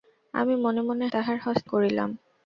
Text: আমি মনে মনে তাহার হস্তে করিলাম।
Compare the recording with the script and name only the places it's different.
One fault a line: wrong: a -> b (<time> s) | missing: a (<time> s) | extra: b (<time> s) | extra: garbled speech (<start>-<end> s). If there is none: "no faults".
no faults